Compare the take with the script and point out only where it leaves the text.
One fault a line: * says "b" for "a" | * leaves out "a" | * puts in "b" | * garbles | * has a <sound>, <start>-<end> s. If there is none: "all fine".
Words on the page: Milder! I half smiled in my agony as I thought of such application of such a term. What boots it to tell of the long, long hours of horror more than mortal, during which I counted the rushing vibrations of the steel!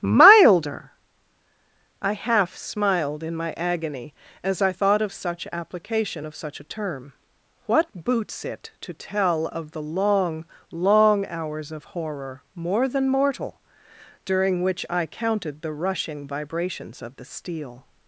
all fine